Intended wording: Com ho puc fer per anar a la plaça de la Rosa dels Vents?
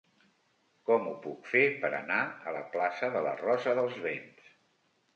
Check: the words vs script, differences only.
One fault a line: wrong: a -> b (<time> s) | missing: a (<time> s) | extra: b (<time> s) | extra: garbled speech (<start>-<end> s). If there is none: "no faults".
no faults